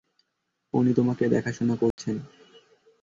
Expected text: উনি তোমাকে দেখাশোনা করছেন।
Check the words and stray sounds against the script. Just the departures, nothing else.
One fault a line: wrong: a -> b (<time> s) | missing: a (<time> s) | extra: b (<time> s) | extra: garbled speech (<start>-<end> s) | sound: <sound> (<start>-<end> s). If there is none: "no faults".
sound: dropout (1.9-2.0 s)